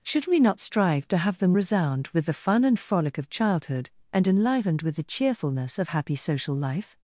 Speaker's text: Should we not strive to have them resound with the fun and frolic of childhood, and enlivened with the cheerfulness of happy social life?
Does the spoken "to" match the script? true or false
true